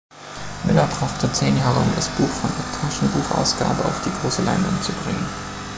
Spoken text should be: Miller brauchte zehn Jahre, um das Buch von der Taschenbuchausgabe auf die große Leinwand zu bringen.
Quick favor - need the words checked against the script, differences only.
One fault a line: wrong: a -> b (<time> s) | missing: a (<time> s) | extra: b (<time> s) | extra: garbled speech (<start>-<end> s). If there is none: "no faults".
no faults